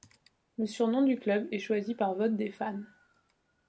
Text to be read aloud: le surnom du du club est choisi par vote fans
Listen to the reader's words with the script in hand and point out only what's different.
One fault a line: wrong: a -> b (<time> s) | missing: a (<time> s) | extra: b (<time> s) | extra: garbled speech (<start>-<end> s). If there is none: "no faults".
missing: du (1.2 s)
extra: des (2.4 s)